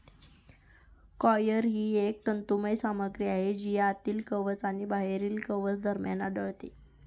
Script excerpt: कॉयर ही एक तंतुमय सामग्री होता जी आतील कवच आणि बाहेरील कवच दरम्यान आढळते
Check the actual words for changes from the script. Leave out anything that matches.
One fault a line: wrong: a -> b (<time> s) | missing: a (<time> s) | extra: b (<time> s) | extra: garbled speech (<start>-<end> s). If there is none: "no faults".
wrong: होता -> आहे (3.3 s)